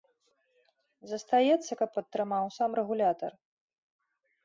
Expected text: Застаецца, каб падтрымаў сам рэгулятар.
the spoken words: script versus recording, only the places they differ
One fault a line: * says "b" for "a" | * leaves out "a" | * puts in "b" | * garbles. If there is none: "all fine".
all fine